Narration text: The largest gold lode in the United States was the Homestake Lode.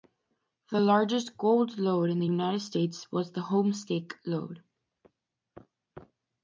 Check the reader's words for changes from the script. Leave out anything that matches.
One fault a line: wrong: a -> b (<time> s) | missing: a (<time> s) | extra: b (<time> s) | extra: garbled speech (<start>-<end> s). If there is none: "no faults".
no faults